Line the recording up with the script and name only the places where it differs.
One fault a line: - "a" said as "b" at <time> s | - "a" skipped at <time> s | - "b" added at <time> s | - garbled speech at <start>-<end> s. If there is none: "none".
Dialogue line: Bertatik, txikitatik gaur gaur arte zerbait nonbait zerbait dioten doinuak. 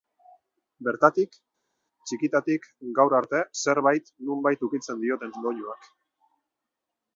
- "gaur" skipped at 3.1 s
- "zerbait" said as "ukitzen" at 4.7 s